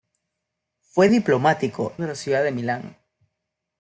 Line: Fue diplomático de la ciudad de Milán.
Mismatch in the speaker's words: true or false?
false